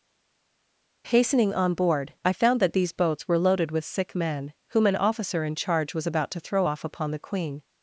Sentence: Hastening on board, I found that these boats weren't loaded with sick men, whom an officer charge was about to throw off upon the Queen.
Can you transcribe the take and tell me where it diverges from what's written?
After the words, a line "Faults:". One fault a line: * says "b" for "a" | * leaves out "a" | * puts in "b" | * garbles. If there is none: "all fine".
Hastening on board, I found that these boats were loaded with sick men, whom an officer in charge was about to throw off upon the Queen.
Faults:
* says "were" for "weren't"
* puts in "in"